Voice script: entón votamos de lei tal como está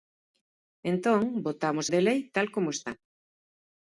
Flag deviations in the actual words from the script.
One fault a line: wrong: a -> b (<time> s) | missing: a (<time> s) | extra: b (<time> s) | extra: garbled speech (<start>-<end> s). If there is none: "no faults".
no faults